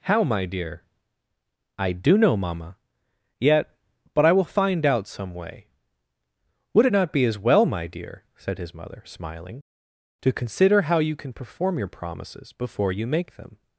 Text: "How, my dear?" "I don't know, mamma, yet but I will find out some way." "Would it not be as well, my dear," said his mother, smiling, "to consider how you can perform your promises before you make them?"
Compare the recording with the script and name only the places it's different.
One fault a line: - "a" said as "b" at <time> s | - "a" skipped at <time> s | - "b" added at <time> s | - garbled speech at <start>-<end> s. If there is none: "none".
- "don't" said as "do" at 1.9 s